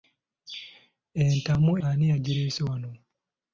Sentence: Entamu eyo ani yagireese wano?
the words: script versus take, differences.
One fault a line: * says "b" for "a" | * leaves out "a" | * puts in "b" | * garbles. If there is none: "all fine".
* leaves out "eyo"